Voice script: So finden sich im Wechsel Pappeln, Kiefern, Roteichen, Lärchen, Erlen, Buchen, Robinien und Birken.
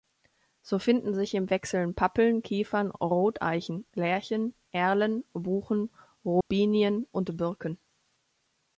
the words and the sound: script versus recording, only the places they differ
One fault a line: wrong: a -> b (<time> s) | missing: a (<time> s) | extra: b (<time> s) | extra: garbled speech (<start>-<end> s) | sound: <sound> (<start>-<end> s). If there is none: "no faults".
sound: dropout (6.4-6.5 s)